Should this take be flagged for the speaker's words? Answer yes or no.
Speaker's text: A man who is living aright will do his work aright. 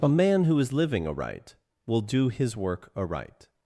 no